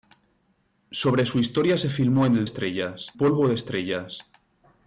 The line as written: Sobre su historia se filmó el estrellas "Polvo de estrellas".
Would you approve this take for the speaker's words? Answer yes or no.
yes